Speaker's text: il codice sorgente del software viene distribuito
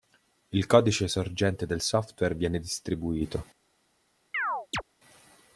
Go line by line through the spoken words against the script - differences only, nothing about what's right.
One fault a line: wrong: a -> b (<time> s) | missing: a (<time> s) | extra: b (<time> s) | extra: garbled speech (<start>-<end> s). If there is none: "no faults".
no faults